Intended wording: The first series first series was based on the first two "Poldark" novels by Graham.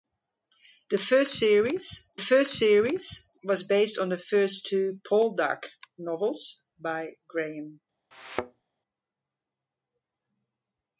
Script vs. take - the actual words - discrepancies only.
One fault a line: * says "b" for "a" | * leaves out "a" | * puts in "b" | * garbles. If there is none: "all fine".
all fine